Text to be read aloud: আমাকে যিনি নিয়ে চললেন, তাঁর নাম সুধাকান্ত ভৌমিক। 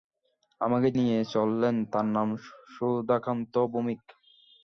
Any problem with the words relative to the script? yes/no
yes